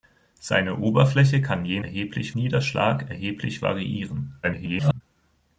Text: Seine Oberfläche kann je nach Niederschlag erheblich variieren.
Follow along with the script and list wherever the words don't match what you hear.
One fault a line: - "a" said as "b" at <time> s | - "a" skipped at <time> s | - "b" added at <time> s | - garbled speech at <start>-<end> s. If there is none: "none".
- "nach" said as "erheblich" at 1.8 s
- garbled speech at 4.4-5.0 s